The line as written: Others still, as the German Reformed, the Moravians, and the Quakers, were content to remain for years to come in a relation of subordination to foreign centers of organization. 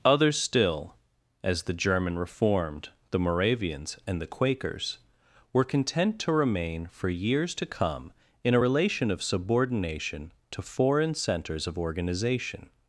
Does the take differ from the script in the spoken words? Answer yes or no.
no